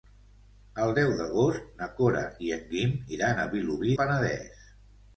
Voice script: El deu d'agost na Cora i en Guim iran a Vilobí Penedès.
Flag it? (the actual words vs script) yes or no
no